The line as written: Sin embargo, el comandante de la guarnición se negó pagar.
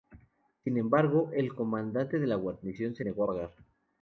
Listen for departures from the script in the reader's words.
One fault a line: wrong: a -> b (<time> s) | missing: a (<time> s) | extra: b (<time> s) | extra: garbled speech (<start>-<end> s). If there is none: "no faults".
no faults